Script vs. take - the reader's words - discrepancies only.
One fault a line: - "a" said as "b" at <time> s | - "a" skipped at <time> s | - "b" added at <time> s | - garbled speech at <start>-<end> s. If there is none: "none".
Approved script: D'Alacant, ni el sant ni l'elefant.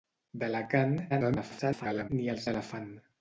- garbled speech at 1.1-2.1 s
- "sant ni" skipped at 2.4 s